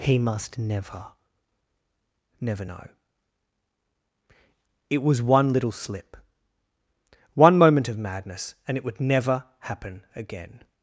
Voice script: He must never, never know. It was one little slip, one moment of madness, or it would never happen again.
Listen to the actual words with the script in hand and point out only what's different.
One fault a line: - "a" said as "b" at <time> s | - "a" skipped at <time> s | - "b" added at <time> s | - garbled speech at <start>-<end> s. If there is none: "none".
- "or" said as "and" at 8.6 s